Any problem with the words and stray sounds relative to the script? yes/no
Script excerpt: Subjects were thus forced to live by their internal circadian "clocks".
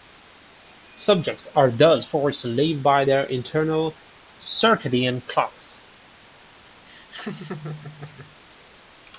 yes